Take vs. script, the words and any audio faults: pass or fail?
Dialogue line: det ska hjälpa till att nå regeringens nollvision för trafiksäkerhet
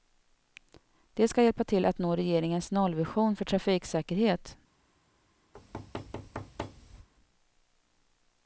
fail